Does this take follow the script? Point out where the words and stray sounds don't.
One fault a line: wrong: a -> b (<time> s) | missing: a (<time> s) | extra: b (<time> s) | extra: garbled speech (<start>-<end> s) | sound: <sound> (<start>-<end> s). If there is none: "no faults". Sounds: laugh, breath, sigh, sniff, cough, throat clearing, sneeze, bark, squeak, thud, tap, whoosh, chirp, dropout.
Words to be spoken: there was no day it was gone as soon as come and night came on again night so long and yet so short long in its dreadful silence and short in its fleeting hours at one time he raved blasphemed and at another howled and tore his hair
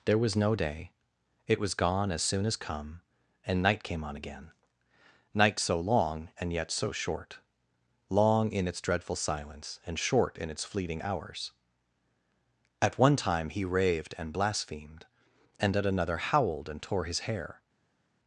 extra: and (14.2 s)